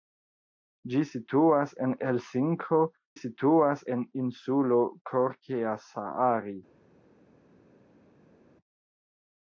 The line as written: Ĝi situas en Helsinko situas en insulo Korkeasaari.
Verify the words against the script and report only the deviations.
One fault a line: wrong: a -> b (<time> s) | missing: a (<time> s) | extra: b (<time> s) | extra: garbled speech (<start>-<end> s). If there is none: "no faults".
no faults